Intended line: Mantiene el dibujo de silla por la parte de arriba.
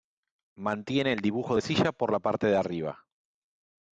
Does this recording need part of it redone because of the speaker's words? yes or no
no